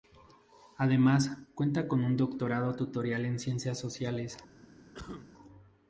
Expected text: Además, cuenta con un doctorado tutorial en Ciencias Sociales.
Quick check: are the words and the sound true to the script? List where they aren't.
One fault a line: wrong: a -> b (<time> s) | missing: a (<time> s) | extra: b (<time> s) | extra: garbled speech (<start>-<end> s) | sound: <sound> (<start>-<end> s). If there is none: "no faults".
sound: cough (4.9-5.3 s)